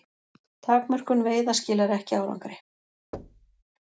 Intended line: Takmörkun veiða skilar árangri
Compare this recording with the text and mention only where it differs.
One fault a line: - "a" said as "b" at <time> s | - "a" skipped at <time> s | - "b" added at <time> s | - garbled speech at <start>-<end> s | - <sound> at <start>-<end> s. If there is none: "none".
- "ekki" added at 2.0 s
- thud at 3.1-3.6 s